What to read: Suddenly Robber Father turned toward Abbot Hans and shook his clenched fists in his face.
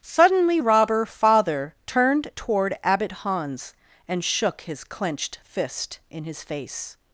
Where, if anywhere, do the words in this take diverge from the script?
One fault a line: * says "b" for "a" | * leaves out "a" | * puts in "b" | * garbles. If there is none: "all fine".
* says "fist" for "fists"